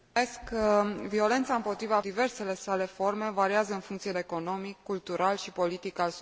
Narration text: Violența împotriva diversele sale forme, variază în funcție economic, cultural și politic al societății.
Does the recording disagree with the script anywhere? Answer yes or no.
no